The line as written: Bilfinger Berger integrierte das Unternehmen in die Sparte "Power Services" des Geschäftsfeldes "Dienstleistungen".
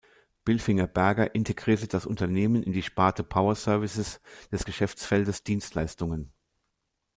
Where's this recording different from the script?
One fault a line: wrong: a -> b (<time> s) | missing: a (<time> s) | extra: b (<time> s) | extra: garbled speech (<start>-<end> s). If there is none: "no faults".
no faults